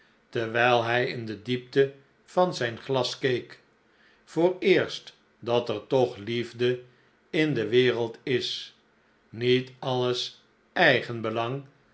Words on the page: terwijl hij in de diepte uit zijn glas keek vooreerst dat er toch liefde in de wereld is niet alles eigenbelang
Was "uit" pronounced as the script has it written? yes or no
no